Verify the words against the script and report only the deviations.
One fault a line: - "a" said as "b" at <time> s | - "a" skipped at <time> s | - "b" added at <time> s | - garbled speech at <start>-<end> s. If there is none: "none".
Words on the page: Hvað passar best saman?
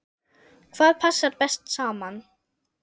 none